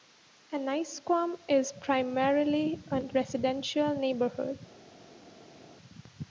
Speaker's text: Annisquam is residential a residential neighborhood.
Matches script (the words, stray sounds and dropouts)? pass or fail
fail